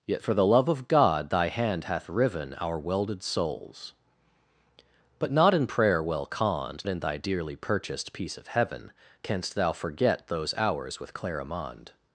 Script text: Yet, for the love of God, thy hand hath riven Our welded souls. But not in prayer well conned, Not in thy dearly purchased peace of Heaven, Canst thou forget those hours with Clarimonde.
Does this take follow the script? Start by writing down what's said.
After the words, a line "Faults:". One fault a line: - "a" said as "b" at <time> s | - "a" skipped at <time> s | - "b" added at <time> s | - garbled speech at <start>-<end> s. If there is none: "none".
Yet, for the love of God, thy hand hath riven Our welded souls. But not in prayer well conned, In thy dearly purchased peace of Heaven, Canst thou forget those hours with Clarimonde.
Faults:
- "Not" skipped at 6.8 s